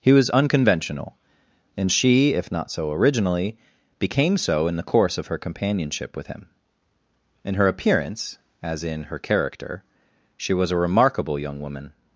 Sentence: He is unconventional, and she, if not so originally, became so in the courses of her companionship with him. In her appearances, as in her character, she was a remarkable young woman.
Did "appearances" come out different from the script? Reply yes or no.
yes